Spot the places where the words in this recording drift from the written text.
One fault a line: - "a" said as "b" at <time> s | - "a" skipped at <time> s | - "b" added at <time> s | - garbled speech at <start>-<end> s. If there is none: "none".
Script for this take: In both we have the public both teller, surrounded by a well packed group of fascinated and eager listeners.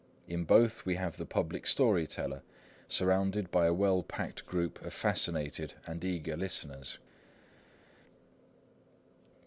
- "both" said as "story" at 1.7 s